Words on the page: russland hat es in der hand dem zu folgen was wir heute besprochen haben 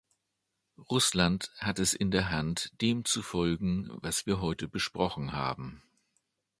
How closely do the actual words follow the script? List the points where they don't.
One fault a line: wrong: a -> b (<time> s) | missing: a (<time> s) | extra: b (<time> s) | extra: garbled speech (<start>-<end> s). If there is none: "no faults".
no faults